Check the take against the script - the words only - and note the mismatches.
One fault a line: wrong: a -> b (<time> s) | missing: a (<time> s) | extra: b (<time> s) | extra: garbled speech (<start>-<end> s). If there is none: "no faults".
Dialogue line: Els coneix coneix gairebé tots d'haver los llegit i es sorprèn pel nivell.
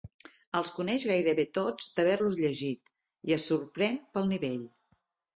missing: coneix (1.0 s)